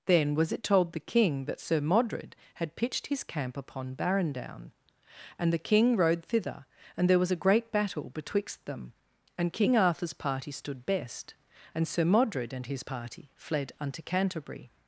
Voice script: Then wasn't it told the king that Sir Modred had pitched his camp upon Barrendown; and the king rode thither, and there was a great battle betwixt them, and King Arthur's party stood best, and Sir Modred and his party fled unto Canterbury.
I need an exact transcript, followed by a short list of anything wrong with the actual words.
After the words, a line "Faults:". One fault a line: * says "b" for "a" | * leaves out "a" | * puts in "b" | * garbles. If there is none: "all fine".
Then was it told the king that Sir Modred had pitched his camp upon Barrendown; and the king rode thither, and there was a great battle betwixt them, and King Arthur's party stood best, and Sir Modred and his party fled unto Canterbury.
Faults:
* says "was" for "wasn't"